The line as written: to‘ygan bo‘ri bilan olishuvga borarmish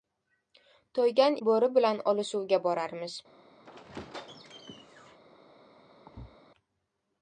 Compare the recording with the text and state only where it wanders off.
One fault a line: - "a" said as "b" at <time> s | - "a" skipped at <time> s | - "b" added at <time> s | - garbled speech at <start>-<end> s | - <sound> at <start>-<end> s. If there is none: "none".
- squeak at 3.6-5.2 s
- thud at 6.1-6.4 s